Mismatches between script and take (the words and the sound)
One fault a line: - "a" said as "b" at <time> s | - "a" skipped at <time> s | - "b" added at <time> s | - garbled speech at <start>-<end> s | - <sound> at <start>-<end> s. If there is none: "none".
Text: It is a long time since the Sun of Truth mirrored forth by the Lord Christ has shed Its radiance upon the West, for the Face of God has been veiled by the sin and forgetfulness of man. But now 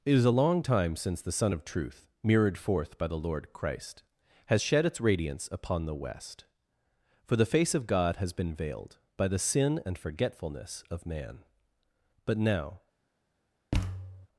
- thud at 13.7-14.3 s